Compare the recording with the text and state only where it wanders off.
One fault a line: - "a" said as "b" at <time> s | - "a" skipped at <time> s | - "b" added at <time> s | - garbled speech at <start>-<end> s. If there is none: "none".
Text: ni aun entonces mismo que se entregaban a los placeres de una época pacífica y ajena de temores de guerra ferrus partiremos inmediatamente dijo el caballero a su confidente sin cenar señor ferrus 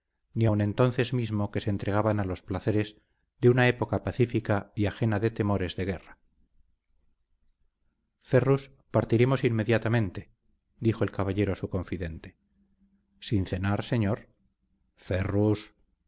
none